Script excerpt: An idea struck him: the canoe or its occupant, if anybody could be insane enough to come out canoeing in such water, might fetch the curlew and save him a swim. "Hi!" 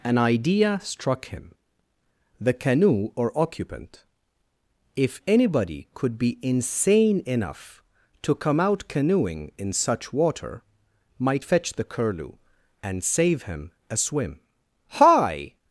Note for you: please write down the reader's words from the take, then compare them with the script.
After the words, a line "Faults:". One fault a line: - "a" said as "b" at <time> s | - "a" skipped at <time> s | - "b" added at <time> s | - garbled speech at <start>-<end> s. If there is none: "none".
An idea struck him: the canoe or occupant, if anybody could be insane enough to come out canoeing in such water, might fetch the curlew and save him a swim. "Hi!"
Faults:
- "its" skipped at 3.4 s